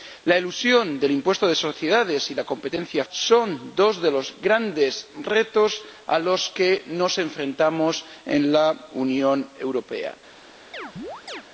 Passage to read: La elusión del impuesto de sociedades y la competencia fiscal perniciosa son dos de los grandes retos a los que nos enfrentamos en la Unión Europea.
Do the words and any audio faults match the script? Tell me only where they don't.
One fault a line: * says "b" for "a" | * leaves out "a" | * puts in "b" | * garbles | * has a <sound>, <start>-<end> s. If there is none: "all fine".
* leaves out "fiscal perniciosa"
* has a chirp, 10.7-11.4 s